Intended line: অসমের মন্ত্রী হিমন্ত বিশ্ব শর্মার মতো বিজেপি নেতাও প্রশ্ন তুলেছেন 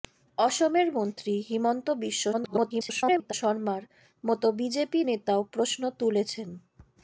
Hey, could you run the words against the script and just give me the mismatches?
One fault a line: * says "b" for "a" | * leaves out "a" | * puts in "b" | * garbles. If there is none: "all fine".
* garbles